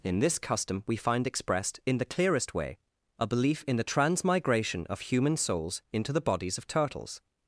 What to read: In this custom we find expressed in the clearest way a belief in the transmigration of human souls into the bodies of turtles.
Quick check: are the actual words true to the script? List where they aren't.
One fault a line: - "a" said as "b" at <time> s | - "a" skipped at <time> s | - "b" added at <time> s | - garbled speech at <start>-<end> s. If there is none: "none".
none